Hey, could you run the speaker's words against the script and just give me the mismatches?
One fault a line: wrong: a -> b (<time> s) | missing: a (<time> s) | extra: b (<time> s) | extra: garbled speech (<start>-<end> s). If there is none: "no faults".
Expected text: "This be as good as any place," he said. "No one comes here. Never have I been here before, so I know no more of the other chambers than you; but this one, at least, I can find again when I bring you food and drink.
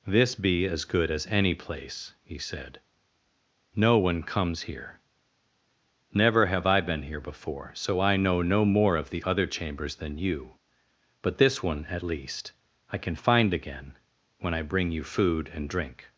no faults